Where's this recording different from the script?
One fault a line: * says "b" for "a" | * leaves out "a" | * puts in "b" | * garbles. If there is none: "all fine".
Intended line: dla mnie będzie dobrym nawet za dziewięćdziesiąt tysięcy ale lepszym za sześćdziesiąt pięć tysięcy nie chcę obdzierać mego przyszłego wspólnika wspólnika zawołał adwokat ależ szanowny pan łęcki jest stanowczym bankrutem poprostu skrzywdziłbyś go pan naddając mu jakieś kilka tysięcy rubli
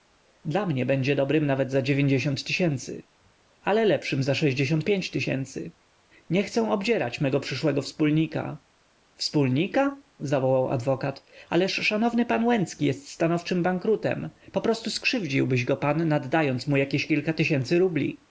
all fine